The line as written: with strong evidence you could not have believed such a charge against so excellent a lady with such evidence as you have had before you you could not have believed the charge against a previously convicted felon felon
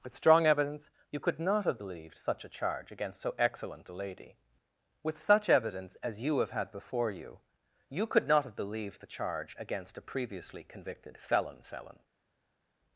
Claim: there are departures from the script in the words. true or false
false